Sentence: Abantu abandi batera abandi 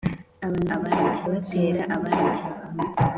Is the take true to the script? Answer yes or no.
yes